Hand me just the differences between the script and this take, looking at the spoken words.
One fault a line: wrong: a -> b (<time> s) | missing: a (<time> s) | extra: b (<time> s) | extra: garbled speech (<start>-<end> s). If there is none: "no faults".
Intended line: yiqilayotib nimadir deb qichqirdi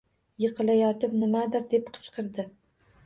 no faults